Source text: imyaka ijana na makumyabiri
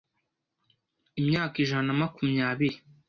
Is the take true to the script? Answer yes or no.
yes